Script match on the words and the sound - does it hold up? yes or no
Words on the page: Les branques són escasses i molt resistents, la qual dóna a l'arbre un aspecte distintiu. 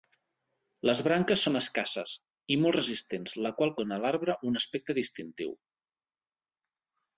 yes